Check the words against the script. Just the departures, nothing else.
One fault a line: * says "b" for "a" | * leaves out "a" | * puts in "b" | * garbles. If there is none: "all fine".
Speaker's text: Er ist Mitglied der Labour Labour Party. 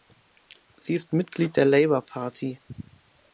* says "Sie" for "Er"
* leaves out "Labour"